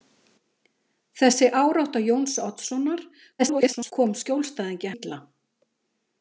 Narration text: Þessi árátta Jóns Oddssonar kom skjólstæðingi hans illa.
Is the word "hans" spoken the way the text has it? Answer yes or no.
no